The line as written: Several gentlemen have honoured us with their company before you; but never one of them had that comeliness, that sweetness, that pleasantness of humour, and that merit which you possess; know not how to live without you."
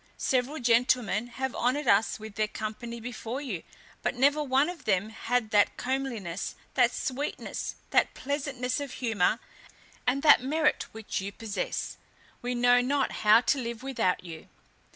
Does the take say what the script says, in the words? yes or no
no